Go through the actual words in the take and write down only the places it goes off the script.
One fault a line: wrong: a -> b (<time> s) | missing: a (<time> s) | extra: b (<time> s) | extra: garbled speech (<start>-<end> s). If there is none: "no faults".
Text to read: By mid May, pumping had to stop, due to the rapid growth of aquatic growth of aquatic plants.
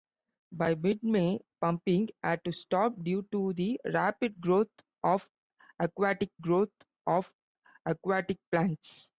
no faults